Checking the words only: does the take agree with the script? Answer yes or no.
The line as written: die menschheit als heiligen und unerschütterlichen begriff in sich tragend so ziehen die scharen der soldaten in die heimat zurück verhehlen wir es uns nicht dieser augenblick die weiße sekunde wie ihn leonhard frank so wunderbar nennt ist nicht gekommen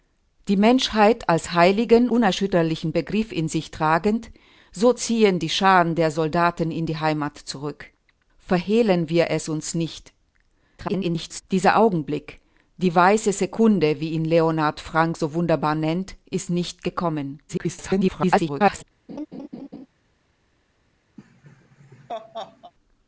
no